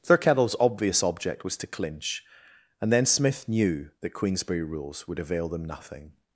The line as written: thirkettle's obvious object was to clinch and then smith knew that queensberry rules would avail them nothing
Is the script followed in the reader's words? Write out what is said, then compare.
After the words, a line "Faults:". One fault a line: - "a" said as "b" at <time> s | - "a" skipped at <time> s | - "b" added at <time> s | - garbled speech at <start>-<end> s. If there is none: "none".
thirkettle's obvious object was to clinch and then smith knew that queensberry rules would avail them nothing
Faults:
none